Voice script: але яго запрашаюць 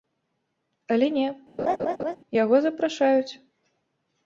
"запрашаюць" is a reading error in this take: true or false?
false